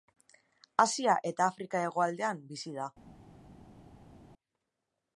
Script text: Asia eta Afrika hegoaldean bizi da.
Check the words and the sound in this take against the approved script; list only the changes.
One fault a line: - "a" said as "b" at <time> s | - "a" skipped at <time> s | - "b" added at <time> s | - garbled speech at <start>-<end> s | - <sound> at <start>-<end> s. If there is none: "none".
none